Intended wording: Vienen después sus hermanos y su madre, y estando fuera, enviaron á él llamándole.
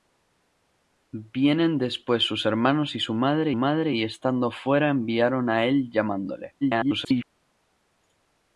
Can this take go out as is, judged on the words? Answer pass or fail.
fail